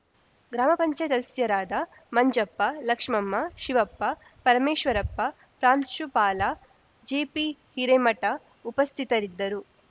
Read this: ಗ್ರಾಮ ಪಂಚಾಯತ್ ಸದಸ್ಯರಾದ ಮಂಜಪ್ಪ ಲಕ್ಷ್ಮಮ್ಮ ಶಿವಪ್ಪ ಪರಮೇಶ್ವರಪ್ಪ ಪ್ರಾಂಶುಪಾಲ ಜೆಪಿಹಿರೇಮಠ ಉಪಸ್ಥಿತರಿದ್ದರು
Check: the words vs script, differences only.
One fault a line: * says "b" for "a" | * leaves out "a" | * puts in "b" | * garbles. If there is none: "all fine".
all fine